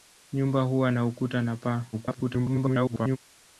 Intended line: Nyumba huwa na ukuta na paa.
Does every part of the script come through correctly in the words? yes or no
no